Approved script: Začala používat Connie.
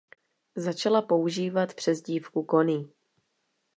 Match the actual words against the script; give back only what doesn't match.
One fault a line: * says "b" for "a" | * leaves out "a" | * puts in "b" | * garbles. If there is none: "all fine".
* puts in "přezdívku"